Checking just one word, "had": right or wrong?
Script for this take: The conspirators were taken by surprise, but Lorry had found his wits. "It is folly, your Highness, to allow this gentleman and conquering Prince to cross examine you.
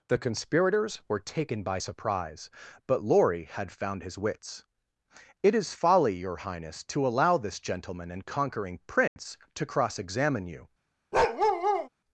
right